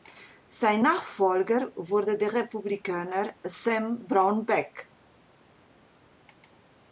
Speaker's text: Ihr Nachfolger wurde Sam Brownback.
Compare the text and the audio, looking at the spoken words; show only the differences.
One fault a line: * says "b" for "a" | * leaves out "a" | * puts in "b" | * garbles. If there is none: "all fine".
* says "Sein" for "Ihr"
* puts in "der Republikaner"